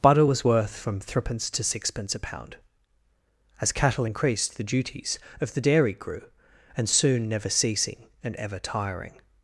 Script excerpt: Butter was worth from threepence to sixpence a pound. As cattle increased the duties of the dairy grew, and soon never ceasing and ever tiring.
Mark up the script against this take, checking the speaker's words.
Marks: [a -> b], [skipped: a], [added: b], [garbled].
Butter was worth from threepence to sixpence a pound. As cattle increased the duties of the dairy grew, and soon never ceasing and ever tiring.